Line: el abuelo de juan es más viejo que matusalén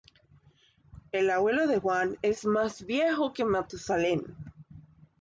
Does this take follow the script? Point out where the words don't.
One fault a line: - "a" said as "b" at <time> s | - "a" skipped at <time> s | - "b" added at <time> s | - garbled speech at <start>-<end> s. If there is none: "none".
none